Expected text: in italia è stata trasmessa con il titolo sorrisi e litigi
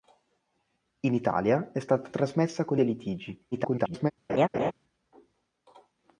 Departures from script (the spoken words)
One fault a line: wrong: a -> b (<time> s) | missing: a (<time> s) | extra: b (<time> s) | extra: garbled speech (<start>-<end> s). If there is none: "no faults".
missing: il titolo sorrisi (2.8 s)
extra: garbled speech (3.5-4.1 s)